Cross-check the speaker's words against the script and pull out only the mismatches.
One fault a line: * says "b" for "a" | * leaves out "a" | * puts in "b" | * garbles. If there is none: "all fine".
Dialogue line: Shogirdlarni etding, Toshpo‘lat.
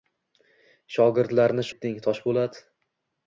all fine